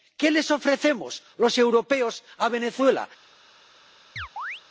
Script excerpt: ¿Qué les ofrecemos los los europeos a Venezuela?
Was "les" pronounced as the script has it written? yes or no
yes